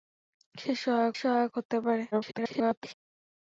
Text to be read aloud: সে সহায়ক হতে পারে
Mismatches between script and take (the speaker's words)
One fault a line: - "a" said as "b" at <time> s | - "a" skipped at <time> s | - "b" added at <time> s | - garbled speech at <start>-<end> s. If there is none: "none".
- "সহায়ক" added at 1.1 s
- garbled speech at 2.1-2.9 s